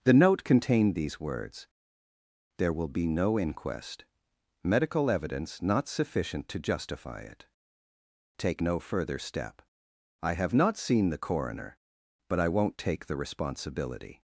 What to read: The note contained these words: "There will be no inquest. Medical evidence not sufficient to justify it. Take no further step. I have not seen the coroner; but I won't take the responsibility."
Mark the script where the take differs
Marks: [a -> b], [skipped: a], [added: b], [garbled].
The note contained these words: "There will be no inquest. Medical evidence not sufficient to justify it. Take no further step. I have not seen the coroner; but I won't take the responsibility."